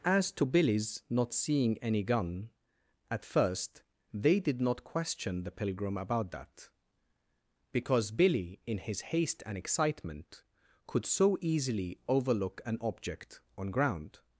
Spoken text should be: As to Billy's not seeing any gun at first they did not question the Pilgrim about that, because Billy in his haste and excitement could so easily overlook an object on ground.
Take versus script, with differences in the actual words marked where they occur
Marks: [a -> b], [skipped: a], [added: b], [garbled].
As to Billy's not seeing any gun at first they did not question the Pilgrim about that, because Billy in his haste and excitement could so easily overlook an object on ground.